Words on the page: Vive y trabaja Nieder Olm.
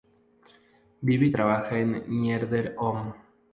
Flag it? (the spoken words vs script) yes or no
yes